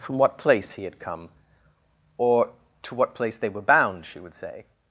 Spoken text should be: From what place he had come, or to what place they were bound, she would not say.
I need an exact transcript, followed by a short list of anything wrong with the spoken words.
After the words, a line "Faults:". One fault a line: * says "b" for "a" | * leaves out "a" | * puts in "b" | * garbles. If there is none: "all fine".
From what place he had come, or to what place they were bound, she would say.
Faults:
* leaves out "not"